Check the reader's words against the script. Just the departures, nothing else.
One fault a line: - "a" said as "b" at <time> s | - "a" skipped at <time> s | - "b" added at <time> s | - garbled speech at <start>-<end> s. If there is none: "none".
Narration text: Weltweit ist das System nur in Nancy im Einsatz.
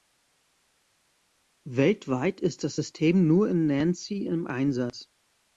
none